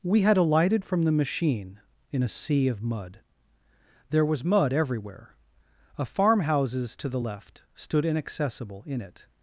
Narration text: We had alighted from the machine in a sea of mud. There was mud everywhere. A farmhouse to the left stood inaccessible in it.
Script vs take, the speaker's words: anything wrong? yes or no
yes